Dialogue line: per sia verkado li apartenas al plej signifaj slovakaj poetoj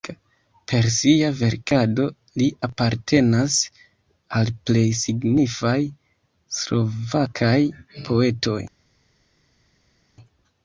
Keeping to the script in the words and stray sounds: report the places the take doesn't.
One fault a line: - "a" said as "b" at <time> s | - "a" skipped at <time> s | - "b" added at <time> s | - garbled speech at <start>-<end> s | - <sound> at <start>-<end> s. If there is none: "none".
none